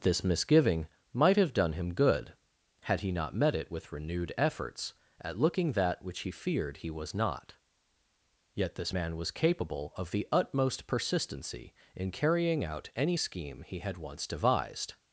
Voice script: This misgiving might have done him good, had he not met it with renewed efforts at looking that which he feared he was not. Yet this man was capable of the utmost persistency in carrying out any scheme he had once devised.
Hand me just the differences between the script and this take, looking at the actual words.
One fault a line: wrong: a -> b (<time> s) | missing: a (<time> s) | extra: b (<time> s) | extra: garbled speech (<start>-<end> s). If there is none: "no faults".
no faults